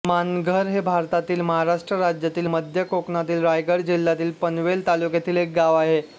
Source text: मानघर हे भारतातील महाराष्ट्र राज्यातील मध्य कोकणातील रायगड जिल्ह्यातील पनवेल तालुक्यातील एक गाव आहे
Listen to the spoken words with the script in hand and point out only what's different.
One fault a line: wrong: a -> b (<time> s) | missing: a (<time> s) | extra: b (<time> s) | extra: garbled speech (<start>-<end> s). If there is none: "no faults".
no faults